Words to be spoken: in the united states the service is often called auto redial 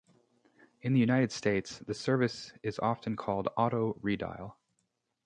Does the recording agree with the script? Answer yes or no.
yes